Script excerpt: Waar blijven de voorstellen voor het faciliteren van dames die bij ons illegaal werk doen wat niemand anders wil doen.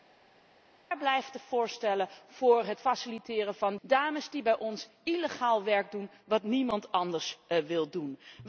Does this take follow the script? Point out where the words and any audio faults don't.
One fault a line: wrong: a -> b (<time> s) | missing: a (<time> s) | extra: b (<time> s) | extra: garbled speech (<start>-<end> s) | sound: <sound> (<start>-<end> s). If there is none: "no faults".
no faults